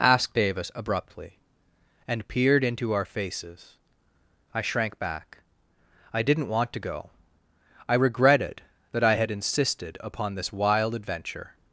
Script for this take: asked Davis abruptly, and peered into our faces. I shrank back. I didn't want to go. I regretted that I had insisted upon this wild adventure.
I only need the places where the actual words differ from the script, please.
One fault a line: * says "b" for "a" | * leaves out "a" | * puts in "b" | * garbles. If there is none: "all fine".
all fine